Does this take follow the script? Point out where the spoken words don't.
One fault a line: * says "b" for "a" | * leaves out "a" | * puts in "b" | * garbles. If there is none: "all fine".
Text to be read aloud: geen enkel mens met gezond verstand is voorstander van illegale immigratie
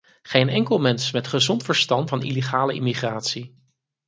* leaves out "is voorstander"